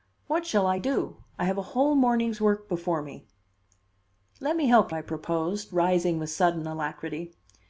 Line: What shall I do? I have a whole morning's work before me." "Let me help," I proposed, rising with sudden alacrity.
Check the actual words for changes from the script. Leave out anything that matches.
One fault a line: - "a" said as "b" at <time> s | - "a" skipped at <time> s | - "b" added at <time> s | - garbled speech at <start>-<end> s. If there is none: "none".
none